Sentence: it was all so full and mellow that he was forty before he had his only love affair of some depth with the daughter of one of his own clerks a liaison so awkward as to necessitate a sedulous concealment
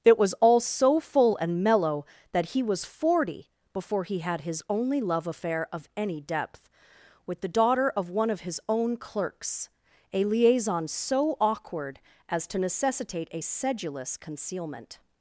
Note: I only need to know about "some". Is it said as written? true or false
false